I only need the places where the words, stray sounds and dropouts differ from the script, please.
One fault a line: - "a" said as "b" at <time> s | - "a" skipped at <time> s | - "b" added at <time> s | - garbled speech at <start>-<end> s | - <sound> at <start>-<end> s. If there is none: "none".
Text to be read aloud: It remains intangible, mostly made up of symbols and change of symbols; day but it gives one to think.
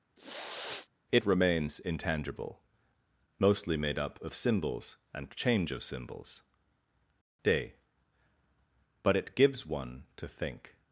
- sniff at 0.2-0.9 s